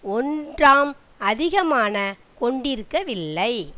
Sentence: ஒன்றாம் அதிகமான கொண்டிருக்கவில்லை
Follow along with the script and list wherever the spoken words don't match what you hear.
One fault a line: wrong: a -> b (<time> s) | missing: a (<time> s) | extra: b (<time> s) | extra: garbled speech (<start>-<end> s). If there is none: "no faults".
no faults